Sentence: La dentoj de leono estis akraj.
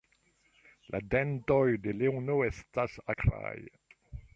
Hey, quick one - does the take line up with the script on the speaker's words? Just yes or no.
no